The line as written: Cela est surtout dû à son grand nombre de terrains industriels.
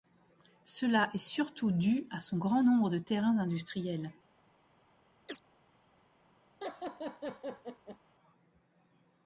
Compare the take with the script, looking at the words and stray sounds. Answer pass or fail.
fail